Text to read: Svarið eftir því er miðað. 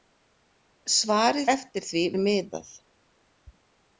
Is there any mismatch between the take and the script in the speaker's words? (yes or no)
no